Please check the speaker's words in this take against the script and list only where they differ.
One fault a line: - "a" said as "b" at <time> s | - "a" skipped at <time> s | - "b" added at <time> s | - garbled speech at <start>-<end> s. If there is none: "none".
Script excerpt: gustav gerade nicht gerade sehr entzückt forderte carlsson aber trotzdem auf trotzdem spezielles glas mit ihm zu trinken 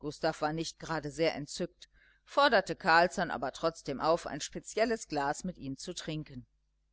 - "gerade" said as "war" at 0.4 s
- "trotzdem" said as "ein" at 4.3 s